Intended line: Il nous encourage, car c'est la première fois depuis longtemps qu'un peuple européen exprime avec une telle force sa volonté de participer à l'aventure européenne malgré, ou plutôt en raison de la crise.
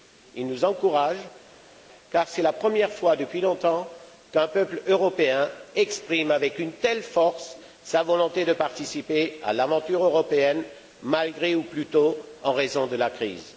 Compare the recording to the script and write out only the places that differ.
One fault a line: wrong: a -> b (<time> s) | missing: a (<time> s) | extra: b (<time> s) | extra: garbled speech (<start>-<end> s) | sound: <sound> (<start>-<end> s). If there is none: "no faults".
no faults